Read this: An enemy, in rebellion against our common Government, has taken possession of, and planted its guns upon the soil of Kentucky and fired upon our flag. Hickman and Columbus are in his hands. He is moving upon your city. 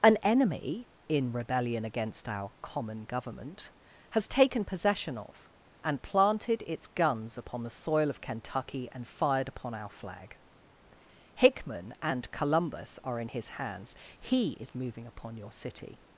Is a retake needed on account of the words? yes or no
no